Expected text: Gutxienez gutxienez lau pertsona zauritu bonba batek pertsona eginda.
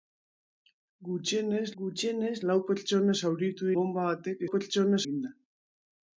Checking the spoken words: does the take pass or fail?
pass